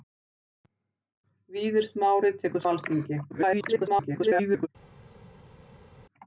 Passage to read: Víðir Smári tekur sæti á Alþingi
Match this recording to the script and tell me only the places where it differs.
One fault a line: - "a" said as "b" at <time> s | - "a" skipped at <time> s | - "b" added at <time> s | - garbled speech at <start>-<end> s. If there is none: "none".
- "sæti" skipped at 2.7 s
- garbled speech at 3.3-4.7 s